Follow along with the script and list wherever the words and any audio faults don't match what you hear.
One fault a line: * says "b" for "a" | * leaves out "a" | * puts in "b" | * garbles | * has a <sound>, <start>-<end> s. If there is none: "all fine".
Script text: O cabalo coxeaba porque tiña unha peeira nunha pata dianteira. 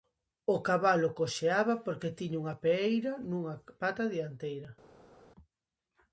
all fine